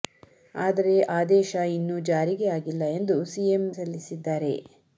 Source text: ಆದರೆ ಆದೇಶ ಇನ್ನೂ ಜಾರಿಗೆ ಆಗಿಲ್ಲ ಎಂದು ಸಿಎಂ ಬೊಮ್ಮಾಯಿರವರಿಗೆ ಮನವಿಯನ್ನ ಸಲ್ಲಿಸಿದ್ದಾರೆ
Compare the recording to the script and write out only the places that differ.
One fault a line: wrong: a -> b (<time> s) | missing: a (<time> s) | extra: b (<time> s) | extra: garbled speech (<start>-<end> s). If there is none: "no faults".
missing: ಬೊಮ್ಮಾಯಿರವರಿಗೆ ಮನವಿಯನ್ನ (3.6 s)